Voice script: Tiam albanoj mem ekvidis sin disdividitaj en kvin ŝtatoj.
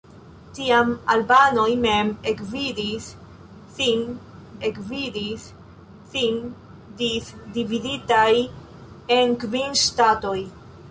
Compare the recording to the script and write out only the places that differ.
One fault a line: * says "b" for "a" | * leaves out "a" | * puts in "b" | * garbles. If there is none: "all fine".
* puts in "ekvidis sin"